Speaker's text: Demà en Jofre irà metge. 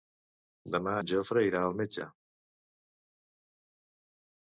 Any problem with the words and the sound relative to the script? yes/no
yes